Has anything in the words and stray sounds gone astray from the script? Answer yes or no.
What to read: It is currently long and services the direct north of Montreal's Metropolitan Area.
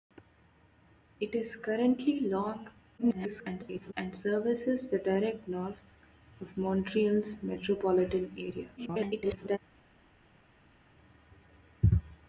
yes